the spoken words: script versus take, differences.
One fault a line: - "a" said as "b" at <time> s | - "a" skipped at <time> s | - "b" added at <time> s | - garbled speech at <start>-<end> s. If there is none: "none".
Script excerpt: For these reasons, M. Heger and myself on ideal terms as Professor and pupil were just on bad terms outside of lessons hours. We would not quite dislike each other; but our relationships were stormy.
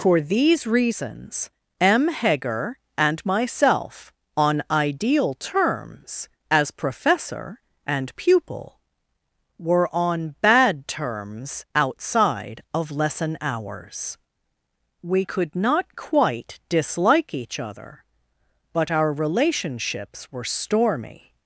- "just" skipped at 9.9 s
- "lessons" said as "lesson" at 12.9 s
- "would" said as "could" at 15.2 s